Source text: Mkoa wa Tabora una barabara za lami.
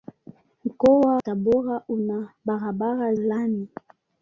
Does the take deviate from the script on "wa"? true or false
true